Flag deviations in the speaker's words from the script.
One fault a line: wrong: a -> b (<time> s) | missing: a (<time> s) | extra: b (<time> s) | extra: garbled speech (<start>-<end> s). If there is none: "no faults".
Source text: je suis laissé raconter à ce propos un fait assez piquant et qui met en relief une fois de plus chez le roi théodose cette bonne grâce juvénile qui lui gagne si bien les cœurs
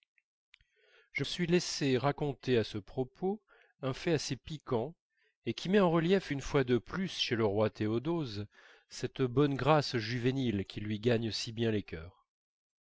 no faults